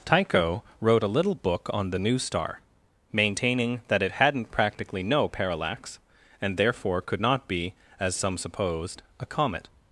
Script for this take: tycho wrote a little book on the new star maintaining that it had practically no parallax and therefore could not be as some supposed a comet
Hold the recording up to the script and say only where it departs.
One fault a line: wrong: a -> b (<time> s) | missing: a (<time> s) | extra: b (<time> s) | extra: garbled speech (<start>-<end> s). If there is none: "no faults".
wrong: had -> hadn't (4.1 s)